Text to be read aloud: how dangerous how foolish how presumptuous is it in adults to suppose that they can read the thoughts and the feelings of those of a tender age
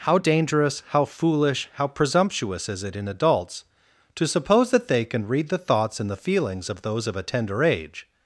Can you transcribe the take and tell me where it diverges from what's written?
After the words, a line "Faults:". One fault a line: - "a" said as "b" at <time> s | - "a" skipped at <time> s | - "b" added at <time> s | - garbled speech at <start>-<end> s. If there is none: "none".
how dangerous how foolish how presumptuous is it in adults to suppose that they can read the thoughts and the feelings of those of a tender age
Faults:
none